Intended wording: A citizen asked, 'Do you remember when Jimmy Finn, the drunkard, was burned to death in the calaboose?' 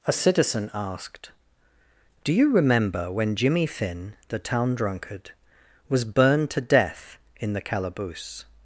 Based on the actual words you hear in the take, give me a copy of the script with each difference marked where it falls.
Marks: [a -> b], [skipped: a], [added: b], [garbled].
A citizen asked, 'Do you remember when Jimmy Finn, the [added: town] drunkard, was burned to death in the calaboose?'